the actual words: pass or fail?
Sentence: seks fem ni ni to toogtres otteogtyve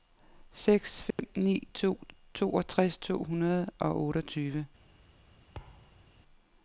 fail